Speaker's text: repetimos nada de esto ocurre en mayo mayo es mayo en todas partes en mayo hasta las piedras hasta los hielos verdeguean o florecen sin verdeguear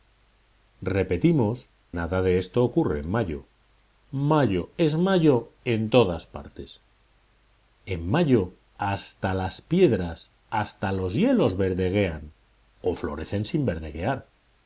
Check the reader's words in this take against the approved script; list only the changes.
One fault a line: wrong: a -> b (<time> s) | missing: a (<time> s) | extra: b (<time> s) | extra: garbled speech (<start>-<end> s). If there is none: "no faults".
no faults